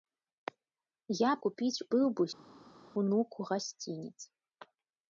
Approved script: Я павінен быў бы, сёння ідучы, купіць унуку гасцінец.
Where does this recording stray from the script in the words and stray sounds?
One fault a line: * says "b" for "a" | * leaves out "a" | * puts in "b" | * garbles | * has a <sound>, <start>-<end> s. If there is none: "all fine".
* says "купіць" for "павінен"
* leaves out "сёння ідучы купіць"